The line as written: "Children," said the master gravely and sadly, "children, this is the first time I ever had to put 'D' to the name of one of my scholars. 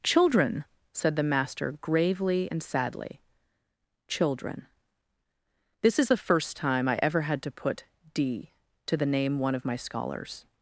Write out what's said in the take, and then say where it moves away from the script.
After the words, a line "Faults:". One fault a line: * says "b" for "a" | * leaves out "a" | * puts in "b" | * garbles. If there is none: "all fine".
"Children," said the master gravely and sadly, "children, this is the first time I ever had to put 'D' to the name one of my scholars.
Faults:
* leaves out "of"